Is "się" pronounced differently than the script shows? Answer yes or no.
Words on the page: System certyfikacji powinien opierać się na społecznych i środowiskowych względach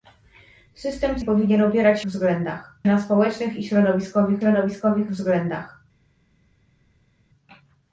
yes